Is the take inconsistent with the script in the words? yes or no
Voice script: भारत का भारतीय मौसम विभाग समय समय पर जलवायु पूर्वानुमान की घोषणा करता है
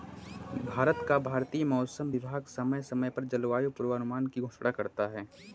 no